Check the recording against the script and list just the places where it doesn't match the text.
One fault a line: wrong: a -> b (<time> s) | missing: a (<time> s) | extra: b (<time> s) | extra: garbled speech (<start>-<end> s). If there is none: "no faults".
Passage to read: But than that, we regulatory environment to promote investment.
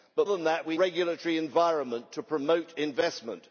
no faults